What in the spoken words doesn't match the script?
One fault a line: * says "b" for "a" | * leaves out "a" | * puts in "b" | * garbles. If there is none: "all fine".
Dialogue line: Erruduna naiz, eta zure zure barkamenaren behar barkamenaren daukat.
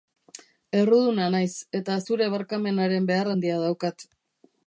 * leaves out "zure"
* says "handia" for "barkamenaren"